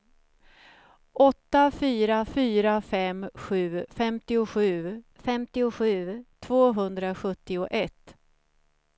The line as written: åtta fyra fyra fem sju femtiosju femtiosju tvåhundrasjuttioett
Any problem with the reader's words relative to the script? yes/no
no